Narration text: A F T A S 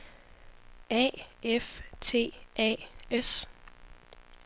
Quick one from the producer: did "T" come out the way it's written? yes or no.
yes